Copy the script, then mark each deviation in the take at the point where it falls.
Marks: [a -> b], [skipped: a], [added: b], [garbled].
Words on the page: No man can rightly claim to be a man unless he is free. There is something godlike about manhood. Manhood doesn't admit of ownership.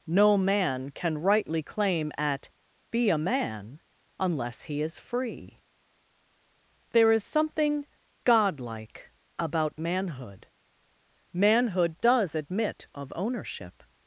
No man can rightly claim [to -> at] be a man unless he is free. There is something godlike about manhood. Manhood [doesn't -> does] admit of ownership.